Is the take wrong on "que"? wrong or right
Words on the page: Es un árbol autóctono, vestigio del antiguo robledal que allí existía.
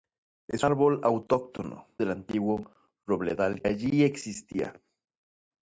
wrong